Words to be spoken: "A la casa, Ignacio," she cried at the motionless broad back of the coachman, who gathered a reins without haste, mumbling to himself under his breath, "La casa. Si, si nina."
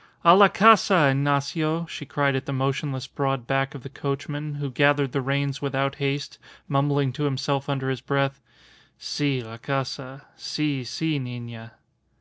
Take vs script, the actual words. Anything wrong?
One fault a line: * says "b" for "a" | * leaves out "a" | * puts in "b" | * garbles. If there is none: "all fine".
* says "the" for "a"
* puts in "Si"